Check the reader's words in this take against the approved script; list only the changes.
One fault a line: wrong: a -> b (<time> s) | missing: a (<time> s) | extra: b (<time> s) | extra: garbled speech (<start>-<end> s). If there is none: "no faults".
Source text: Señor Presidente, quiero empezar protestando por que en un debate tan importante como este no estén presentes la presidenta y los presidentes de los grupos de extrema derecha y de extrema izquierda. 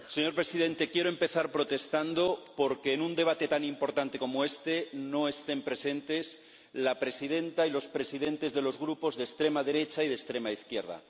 no faults